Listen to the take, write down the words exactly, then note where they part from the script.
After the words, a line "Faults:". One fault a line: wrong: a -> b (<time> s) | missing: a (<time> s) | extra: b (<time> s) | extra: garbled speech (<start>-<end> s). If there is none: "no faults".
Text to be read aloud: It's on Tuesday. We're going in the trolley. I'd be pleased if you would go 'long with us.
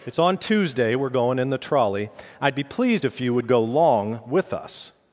It's on Tuesday. We're going in the trolley. I'd be pleased if you would go 'long with us.
Faults:
no faults